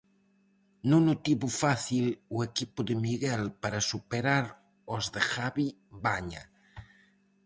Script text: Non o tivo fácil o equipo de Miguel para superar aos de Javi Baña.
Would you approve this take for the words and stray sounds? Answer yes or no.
yes